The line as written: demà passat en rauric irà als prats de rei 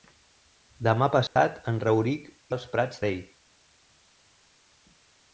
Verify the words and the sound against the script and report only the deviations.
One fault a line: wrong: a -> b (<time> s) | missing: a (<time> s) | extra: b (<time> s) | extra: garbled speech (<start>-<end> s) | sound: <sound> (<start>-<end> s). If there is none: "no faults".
sound: dropout (1.3-1.4 s)
missing: irà (2.3 s)
missing: de (3.0 s)